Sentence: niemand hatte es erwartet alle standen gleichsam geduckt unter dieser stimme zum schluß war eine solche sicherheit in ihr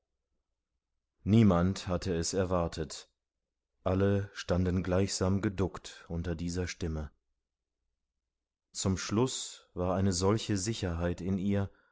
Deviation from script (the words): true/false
false